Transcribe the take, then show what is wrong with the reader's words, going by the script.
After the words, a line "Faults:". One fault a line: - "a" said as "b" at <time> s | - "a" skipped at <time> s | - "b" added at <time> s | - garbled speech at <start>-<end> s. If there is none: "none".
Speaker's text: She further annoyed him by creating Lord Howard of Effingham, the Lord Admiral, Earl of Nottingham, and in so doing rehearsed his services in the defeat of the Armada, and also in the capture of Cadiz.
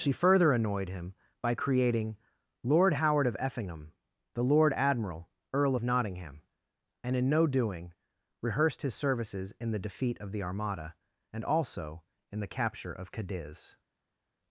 She further annoyed him by creating Lord Howard of Effingham, the Lord Admiral, Earl of Nottingham, and in no doing rehearsed his services in the defeat of the Armada, and also in the capture of Cadiz.
Faults:
- "so" said as "no" at 7.3 s